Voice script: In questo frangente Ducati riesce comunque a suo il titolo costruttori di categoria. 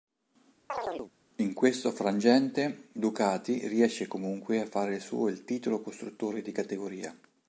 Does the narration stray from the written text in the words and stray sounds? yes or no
yes